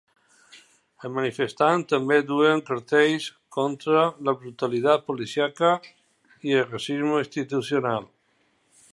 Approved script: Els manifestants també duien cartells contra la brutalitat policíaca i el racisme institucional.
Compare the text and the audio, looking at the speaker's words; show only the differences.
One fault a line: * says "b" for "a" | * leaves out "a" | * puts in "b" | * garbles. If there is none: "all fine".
all fine